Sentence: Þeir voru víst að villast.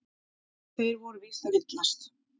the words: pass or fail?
pass